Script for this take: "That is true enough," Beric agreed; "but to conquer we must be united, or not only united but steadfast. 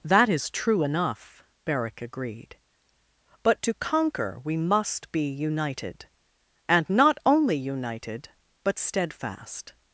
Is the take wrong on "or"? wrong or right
wrong